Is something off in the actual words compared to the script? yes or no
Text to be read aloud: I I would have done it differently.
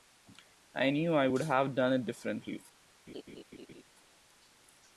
yes